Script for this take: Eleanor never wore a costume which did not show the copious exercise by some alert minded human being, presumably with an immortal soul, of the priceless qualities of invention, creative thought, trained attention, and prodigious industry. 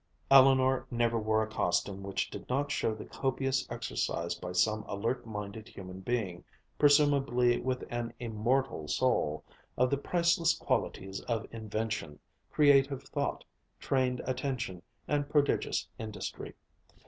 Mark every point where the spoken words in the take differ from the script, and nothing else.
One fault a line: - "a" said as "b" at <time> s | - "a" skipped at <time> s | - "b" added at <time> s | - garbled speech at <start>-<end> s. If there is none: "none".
none